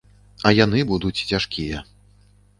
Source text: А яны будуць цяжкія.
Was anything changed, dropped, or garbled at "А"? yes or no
no